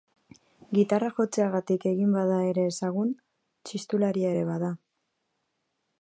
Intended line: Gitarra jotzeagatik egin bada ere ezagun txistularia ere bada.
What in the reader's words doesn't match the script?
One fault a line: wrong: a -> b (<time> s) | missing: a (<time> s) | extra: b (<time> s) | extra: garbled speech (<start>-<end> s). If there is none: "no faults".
no faults